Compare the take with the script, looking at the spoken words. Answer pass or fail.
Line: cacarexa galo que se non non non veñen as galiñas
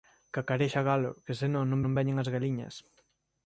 pass